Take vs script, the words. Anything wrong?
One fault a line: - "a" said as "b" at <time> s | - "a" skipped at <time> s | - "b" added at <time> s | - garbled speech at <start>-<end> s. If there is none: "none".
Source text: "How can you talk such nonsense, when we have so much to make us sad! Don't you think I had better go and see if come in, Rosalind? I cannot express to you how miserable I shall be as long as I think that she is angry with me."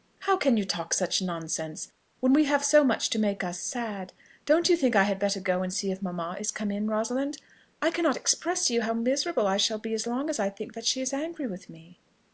- "mamma is" added at 6.0 s